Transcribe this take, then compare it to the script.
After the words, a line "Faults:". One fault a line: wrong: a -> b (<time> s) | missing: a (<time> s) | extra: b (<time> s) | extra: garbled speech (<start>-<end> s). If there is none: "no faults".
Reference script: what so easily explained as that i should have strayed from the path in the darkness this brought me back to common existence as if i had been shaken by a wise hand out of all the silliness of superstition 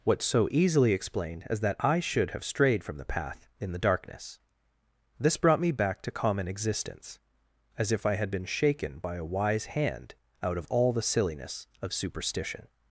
what so easily explained as that i should have strayed from the path in the darkness this brought me back to common existence as if i had been shaken by a wise hand out of all the silliness of superstition
Faults:
no faults